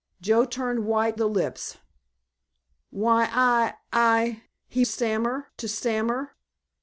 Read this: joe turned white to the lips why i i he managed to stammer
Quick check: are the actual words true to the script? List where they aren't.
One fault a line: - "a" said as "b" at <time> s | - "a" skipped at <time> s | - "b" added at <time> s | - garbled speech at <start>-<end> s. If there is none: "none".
- "to" skipped at 1.2 s
- "managed" said as "stammer" at 4.8 s